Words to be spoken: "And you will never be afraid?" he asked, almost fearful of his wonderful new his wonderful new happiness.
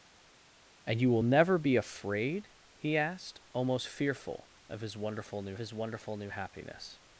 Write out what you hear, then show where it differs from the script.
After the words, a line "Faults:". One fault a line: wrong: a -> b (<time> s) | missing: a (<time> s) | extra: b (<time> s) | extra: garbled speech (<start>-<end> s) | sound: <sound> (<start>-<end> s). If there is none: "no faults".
"And you will never be afraid?" he asked, almost fearful of his wonderful new his wonderful new happiness.
Faults:
no faults